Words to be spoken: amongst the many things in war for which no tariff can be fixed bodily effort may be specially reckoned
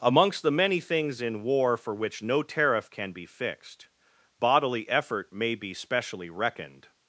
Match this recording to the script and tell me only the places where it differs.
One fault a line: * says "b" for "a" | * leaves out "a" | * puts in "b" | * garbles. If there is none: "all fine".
all fine